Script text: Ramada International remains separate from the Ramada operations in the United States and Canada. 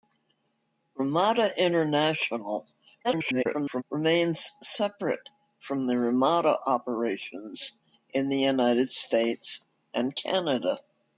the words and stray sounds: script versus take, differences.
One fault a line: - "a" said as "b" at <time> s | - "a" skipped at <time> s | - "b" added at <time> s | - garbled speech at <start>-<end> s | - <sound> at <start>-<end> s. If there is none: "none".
- garbled speech at 3.0-3.8 s